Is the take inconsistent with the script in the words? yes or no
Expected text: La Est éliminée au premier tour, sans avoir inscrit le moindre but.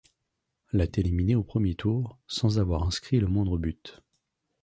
no